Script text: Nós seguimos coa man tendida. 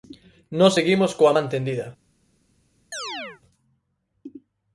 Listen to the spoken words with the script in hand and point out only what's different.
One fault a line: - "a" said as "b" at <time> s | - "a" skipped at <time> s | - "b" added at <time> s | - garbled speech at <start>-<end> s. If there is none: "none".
none